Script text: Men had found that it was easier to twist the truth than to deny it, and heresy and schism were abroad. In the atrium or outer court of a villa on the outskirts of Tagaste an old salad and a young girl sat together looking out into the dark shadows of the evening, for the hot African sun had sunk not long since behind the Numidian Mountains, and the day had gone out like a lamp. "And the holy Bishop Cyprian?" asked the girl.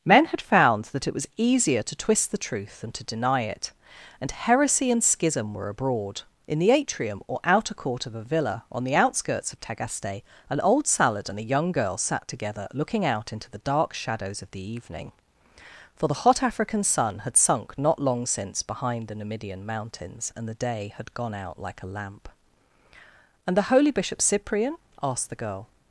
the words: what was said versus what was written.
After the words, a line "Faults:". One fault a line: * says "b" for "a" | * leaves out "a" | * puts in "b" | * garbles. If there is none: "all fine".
Men had found that it was easier to twist the truth than to deny it, and heresy and schism were abroad. In the atrium or outer court of a villa on the outskirts of Tagaste an old salad and a young girl sat together looking out into the dark shadows of the evening, for the hot African sun had sunk not long since behind the Numidian Mountains, and the day had gone out like a lamp. "And the holy Bishop Cyprian?" asked the girl.
Faults:
all fine